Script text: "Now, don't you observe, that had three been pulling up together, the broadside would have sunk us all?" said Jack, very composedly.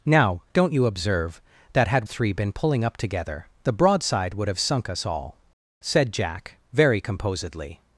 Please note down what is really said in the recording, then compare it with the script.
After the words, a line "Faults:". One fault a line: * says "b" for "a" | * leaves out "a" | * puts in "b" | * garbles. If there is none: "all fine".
"Now, don't you observe, that had three been pulling up together, the broadside would have sunk us all?" said Jack, very composedly.
Faults:
all fine